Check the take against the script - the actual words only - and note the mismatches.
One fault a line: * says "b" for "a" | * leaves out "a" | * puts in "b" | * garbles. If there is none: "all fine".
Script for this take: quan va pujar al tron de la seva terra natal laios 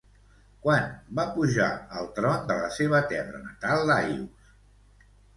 all fine